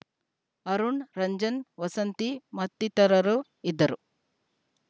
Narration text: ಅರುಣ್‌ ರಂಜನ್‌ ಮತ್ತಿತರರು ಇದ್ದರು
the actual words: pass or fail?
fail